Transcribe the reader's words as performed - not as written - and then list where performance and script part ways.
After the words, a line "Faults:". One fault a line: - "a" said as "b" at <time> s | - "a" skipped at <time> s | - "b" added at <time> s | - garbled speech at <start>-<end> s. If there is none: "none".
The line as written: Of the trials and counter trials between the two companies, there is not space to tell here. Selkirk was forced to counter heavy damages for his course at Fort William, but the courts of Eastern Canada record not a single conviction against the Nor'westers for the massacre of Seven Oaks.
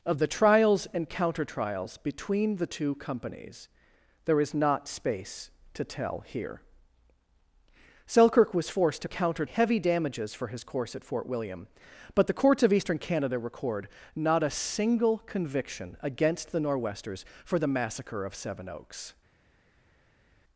Of the trials and counter trials between the two companies, there is not space to tell here. Selkirk was forced to counter heavy damages for his course at Fort William, but the courts of Eastern Canada record not a single conviction against the Nor'westers for the massacre of Seven Oaks.
Faults:
none